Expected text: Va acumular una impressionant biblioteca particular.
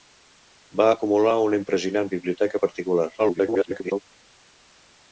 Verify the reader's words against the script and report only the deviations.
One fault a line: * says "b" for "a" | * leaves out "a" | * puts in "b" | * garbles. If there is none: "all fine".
* garbles